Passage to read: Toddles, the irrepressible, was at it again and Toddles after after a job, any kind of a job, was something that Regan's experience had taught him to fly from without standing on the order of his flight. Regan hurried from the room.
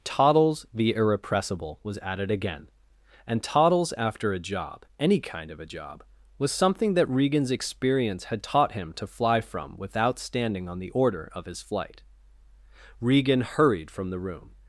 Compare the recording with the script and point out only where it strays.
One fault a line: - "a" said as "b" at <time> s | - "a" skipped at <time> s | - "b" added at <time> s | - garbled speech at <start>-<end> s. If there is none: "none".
- "after" skipped at 4.3 s